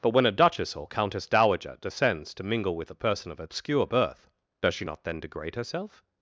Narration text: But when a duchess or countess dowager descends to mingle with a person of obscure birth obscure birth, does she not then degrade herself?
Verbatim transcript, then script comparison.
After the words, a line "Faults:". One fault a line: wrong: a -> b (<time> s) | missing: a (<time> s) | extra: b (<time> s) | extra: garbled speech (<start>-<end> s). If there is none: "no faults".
But when a duchess or countess dowager descends to mingle with a person of obscure birth, does she not then degrade herself?
Faults:
missing: obscure birth (4.3 s)